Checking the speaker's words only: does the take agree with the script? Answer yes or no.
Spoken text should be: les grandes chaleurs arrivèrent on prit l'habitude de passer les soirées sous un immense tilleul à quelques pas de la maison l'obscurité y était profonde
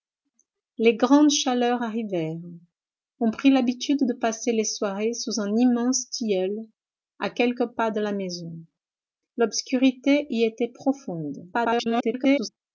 no